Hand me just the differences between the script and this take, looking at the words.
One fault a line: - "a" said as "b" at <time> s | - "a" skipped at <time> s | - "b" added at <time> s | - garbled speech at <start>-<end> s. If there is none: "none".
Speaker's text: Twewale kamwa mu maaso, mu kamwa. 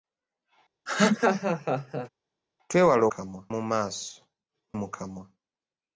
none